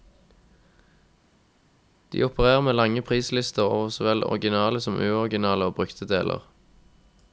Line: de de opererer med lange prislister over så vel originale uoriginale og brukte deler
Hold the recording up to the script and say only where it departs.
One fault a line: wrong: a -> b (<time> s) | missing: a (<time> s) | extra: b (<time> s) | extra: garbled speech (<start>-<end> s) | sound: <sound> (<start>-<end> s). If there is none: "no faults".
missing: de (2.2 s)
extra: som (4.8 s)